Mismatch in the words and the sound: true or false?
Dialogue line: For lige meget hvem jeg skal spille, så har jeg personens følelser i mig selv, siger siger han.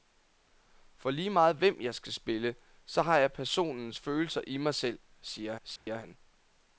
true